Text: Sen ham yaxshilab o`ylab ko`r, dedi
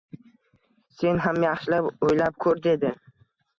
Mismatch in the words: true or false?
false